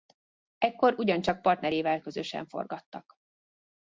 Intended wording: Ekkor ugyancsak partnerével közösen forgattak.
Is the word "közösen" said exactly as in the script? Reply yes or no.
yes